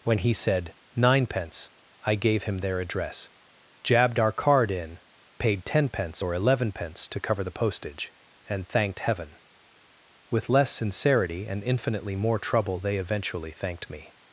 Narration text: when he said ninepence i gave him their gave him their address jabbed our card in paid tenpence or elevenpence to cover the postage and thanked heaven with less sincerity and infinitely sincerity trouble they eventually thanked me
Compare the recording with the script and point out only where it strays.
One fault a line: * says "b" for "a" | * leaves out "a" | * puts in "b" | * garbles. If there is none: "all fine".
* leaves out "gave him their"
* says "more" for "sincerity"